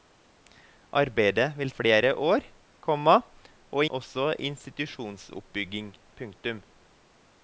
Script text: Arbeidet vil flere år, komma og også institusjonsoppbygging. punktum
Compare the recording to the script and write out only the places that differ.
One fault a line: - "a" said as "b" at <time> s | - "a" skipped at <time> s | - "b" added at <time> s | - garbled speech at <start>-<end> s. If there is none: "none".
none